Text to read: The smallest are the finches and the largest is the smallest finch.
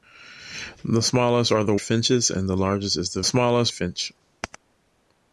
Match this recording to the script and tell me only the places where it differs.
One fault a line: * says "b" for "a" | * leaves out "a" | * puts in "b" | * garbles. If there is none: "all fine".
all fine